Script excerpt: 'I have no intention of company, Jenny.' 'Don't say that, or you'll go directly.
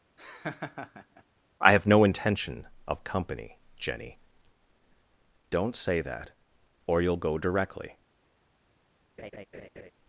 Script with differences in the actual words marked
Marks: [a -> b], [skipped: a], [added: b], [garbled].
'I have no intention of company, Jenny.' 'Don't say that, or you'll go directly.